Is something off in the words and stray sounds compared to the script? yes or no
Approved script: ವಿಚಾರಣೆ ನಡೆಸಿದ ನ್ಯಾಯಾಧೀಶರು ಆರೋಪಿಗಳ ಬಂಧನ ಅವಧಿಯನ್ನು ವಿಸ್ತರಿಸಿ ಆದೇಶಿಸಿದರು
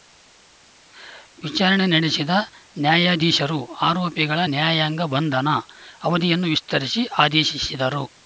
yes